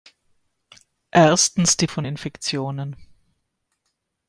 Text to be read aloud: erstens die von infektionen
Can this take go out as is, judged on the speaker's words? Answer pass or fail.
pass